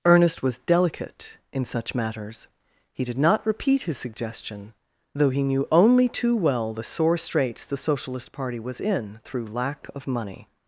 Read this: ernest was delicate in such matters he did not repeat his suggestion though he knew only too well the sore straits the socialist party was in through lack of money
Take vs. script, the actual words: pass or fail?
pass